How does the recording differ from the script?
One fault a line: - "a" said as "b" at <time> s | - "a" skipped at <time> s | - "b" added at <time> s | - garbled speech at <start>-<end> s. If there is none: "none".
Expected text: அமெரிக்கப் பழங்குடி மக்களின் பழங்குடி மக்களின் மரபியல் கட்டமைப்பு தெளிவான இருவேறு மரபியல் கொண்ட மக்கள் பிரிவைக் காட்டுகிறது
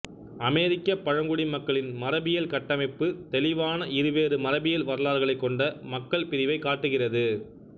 - "பழங்குடி மக்களின்" skipped at 1.9 s
- "வரலாறுகளைக்" added at 4.9 s